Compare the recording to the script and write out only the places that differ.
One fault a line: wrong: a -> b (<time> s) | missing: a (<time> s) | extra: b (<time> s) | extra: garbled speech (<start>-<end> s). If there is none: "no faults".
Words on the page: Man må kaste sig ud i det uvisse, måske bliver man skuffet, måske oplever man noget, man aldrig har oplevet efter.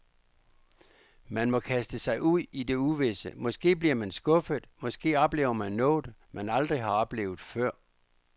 wrong: efter -> før (7.4 s)